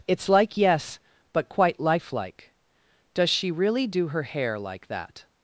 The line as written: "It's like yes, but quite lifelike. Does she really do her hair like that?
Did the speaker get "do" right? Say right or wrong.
right